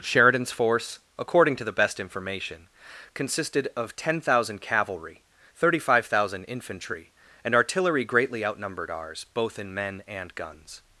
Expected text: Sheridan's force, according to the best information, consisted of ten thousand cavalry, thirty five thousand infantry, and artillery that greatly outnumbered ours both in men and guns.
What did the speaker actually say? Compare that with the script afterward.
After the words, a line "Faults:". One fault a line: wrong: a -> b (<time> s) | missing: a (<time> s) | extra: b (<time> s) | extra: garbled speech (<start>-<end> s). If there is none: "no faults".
Sheridan's force, according to the best information, consisted of ten thousand cavalry, thirty five thousand infantry, and artillery greatly outnumbered ours both in men and guns.
Faults:
missing: that (8.0 s)